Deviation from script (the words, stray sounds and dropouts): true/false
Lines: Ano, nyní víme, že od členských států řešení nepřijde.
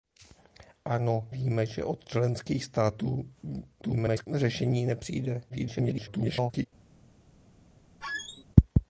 true